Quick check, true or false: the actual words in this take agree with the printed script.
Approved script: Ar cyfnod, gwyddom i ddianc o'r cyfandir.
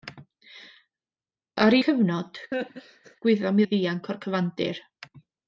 true